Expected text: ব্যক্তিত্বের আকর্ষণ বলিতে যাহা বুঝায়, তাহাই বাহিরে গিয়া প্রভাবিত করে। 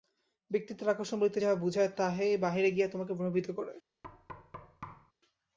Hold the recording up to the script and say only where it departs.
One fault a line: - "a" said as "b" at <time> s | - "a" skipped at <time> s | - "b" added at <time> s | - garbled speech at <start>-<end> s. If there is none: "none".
- "তোমাকে" added at 2.9 s